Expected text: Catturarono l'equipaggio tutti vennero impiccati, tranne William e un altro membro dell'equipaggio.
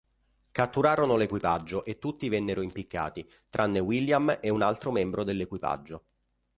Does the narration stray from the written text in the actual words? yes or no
yes